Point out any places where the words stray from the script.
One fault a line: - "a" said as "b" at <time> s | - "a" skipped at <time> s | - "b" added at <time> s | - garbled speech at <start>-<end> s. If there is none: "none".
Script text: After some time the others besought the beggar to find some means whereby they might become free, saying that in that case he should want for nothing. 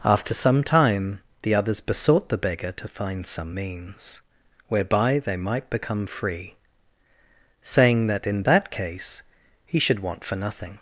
none